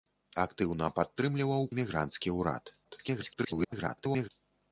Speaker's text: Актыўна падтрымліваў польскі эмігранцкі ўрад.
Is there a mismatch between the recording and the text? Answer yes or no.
yes